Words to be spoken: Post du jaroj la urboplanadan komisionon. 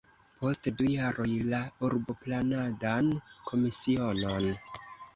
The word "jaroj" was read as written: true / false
true